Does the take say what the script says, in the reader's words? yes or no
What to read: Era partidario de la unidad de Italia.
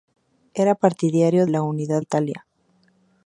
no